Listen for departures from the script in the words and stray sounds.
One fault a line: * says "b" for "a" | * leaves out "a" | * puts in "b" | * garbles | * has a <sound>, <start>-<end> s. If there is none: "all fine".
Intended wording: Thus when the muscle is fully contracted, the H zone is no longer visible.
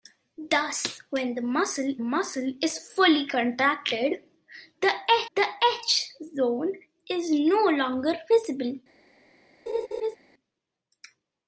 * puts in "muscle"
* puts in "the"
* has a laugh, 9.7-10.2 s